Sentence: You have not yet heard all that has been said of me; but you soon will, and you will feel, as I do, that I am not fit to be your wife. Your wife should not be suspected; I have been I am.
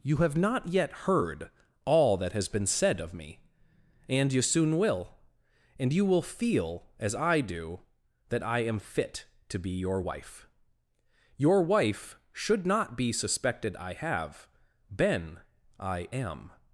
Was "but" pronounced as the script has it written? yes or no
no